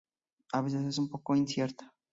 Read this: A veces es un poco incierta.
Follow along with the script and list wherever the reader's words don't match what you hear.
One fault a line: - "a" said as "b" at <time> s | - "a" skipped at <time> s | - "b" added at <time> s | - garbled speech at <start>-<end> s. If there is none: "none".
none